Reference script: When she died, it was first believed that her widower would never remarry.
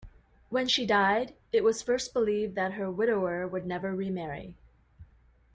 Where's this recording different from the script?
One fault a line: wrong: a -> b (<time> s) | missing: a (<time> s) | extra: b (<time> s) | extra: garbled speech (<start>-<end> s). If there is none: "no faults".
no faults